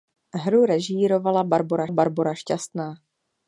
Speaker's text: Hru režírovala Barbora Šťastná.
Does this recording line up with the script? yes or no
no